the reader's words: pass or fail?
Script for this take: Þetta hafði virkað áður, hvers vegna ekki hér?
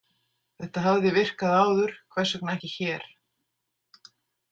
pass